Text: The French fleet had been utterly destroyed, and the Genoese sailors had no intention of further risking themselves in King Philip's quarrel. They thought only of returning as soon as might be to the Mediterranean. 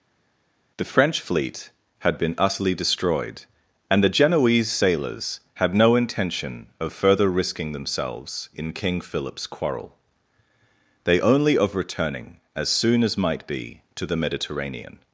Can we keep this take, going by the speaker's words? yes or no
no